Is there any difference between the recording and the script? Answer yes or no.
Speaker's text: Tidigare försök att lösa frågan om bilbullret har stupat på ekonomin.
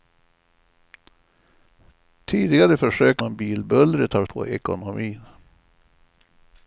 yes